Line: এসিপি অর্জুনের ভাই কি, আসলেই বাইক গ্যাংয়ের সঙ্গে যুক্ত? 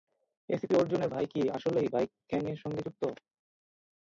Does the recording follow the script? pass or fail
pass